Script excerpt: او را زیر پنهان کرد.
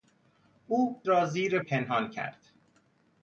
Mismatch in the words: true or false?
false